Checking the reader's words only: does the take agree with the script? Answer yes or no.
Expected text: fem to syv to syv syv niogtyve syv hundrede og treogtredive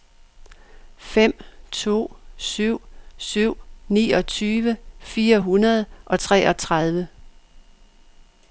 no